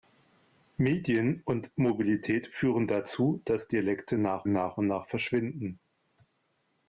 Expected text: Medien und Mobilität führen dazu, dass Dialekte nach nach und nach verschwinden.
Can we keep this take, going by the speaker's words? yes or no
yes